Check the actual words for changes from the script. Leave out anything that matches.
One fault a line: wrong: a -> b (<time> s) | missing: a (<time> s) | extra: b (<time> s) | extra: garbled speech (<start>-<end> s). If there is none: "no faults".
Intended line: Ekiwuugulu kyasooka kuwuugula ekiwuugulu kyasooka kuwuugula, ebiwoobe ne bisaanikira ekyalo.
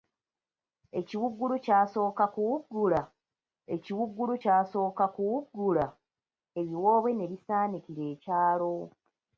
no faults